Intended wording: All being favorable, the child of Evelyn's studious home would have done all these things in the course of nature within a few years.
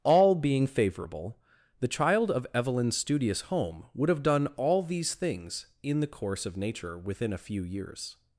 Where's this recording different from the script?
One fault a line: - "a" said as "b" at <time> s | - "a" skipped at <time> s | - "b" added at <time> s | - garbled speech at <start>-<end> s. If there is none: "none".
none